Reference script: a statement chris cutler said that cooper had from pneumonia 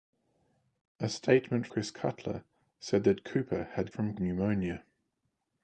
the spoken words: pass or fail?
pass